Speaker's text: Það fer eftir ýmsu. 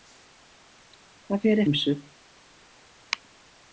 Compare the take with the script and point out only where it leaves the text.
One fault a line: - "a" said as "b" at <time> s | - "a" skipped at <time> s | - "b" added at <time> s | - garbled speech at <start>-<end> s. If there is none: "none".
- "eftir" skipped at 1.6 s